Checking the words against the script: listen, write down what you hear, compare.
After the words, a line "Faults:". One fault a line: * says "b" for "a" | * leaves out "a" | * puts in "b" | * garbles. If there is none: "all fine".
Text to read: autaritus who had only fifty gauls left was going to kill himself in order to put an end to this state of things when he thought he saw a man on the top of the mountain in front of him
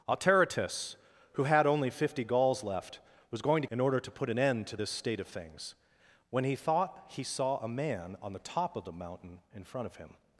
autaritus who had only fifty gauls left was going to in order to put an end to this state of things when he thought he saw a man on the top of the mountain in front of him
Faults:
* leaves out "kill himself"